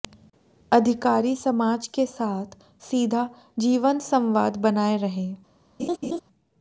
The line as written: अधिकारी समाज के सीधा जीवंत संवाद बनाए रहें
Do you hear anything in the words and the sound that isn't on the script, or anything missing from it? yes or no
yes